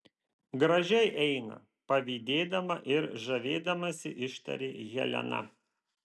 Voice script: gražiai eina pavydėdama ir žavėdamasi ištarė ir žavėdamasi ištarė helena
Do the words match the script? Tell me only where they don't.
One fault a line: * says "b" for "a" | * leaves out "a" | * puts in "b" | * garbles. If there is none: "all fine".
* leaves out "ir žavėdamasi ištarė"